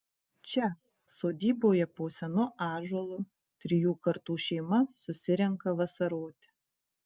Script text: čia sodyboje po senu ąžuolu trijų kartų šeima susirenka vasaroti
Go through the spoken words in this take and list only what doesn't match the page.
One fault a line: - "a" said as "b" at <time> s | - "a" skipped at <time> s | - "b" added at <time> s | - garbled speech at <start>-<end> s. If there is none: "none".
none